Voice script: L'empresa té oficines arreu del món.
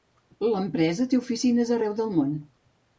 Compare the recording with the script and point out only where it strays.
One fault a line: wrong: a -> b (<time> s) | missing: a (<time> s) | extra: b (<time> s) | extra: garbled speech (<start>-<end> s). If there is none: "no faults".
no faults